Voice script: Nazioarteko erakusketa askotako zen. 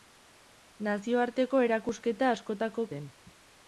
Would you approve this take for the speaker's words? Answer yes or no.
yes